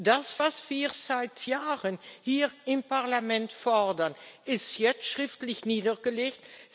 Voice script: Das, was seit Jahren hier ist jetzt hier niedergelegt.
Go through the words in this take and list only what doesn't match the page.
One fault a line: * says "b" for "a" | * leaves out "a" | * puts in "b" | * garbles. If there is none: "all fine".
* puts in "wir"
* puts in "im Parlament fordern"
* says "schriftlich" for "hier"